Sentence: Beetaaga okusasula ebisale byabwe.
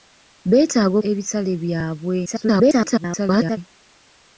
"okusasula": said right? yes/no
no